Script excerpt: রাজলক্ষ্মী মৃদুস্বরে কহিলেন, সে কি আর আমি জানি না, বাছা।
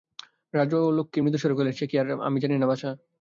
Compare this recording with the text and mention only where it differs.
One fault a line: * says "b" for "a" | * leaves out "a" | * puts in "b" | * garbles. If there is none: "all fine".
all fine